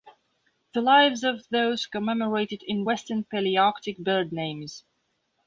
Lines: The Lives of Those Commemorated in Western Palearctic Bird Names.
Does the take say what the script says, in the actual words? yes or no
yes